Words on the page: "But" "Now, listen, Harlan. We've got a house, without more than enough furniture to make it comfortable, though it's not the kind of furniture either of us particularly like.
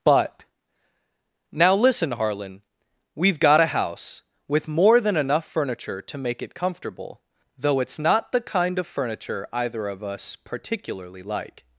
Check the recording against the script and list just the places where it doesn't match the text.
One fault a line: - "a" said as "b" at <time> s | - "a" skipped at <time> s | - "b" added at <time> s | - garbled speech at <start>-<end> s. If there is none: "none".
- "without" said as "with" at 4.5 s